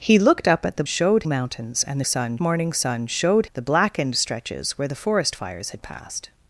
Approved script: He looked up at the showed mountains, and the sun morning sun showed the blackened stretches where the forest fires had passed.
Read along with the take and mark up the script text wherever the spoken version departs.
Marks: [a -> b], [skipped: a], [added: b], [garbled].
He looked up at the showed mountains, and the sun morning sun showed the blackened stretches where the forest fires had passed.